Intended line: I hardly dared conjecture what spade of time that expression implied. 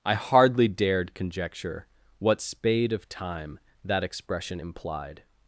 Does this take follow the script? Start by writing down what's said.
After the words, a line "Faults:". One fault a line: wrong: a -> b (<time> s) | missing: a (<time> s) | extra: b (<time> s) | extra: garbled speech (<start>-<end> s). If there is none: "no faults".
I hardly dared conjecture what spade of time that expression implied.
Faults:
no faults